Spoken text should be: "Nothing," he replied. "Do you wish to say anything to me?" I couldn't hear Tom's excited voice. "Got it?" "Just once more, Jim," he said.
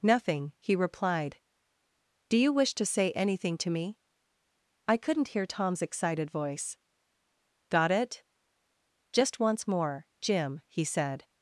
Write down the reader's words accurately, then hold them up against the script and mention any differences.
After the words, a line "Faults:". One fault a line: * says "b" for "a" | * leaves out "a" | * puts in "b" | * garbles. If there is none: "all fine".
"Nothing," he replied. "Do you wish to say anything to me?" I couldn't hear Tom's excited voice. "Got it?" "Just once more, Jim," he said.
Faults:
all fine